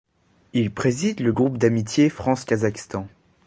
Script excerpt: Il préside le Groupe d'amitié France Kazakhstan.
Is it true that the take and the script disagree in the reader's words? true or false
false